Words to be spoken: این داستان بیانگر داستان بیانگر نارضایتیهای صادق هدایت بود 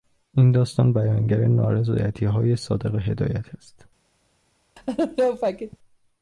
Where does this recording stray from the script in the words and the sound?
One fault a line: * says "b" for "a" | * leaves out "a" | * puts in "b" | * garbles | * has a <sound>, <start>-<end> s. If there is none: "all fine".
* leaves out "داستان بیانگر"
* says "است" for "بود"
* has a laugh, 4.8-5.8 s